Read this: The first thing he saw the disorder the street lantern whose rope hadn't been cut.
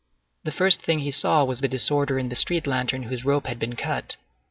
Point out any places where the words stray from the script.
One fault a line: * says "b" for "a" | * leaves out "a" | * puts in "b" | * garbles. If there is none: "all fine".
* puts in "was"
* puts in "in"
* says "had" for "hadn't"